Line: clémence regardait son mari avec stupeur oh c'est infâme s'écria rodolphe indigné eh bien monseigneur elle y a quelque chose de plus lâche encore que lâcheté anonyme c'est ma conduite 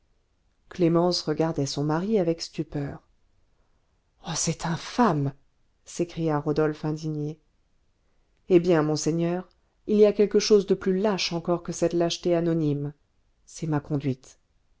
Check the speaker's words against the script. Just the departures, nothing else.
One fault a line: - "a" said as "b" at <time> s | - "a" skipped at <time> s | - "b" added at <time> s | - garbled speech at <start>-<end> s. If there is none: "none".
- "elle" said as "il" at 9.8 s
- "cette" added at 11.7 s